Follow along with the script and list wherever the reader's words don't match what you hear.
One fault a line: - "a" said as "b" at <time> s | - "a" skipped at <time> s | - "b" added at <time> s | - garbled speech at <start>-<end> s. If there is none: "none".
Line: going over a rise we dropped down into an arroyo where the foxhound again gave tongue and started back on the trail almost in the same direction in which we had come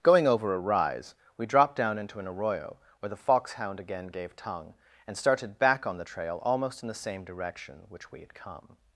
- "in" skipped at 7.8 s